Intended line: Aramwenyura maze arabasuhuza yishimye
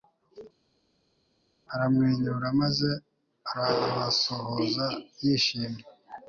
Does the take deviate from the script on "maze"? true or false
false